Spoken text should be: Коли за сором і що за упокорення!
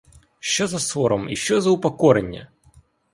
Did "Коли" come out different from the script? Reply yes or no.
yes